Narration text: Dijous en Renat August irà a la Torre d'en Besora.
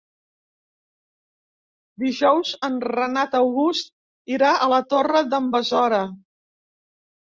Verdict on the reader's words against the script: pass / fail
pass